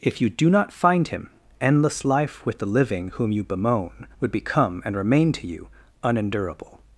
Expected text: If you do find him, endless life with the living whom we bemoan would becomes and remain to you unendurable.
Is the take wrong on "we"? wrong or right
wrong